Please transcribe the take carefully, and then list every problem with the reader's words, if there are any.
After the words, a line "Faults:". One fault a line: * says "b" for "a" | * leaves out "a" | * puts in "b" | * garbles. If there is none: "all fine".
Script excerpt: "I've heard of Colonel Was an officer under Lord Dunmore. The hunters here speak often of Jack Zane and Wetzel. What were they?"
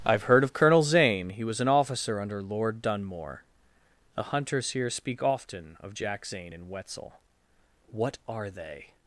"I've heard of Colonel Zane. He was an officer under Lord Dunmore. The hunters here speak often of Jack Zane and Wetzel. What are they?"
Faults:
* puts in "Zane He"
* says "are" for "were"